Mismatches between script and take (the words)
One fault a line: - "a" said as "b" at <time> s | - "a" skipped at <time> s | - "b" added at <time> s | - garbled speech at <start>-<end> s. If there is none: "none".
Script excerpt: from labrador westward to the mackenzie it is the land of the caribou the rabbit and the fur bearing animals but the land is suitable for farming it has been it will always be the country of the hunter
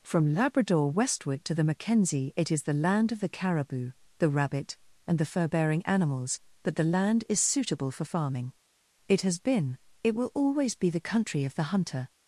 none